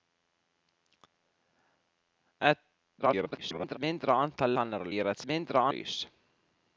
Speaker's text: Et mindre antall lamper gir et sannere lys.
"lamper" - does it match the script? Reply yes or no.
no